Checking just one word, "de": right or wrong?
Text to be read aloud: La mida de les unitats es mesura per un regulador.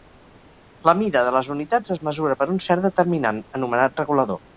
right